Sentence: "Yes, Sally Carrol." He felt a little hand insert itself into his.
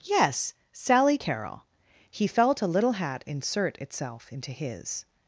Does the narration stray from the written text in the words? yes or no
yes